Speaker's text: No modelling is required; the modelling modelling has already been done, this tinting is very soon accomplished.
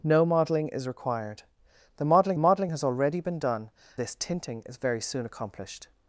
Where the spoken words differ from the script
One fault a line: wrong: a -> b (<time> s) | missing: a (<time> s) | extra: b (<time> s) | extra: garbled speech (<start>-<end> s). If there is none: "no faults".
no faults